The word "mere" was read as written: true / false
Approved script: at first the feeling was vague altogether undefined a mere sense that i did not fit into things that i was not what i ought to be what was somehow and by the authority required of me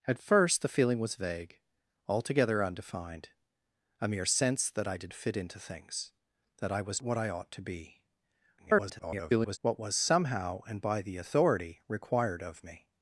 true